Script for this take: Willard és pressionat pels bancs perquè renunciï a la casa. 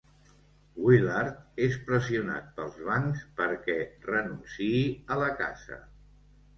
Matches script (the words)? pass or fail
pass